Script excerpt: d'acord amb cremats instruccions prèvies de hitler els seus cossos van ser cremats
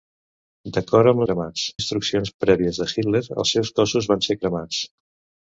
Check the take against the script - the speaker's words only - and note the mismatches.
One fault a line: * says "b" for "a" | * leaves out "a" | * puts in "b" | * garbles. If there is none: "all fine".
all fine